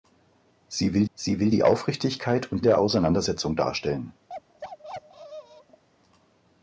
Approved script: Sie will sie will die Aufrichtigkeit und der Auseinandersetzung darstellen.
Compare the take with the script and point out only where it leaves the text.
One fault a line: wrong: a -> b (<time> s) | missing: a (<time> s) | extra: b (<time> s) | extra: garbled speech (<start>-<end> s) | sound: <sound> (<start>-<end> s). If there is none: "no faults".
sound: bark (4.3-5.8 s)